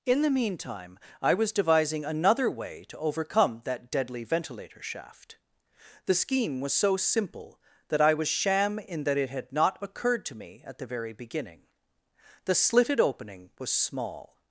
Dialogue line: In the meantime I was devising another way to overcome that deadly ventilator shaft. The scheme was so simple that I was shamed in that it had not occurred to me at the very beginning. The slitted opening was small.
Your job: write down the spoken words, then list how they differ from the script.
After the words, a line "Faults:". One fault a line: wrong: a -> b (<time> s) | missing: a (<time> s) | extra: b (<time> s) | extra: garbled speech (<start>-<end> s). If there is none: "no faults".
In the meantime I was devising another way to overcome that deadly ventilator shaft. The scheme was so simple that I was sham in that it had not occurred to me at the very beginning. The slitted opening was small.
Faults:
wrong: shamed -> sham (8.3 s)